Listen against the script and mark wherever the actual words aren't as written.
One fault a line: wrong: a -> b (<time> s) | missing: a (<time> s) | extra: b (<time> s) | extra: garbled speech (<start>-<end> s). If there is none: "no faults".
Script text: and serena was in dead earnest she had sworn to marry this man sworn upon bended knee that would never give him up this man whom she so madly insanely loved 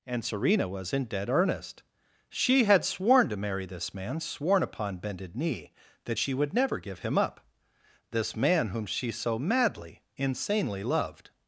extra: she (6.2 s)